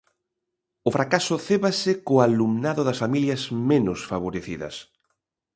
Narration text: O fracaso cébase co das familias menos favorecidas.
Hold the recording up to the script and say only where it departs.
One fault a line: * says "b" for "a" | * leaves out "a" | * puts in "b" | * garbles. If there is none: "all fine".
* puts in "alumnado"